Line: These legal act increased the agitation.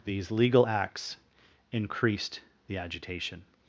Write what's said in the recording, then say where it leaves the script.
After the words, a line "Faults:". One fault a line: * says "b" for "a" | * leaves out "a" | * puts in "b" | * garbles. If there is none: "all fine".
These legal acts increased the agitation.
Faults:
* says "acts" for "act"